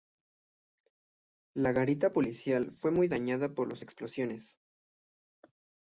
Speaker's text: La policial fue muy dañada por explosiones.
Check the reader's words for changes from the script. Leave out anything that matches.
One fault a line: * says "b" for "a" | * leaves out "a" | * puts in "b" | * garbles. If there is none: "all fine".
* puts in "garita"
* puts in "las"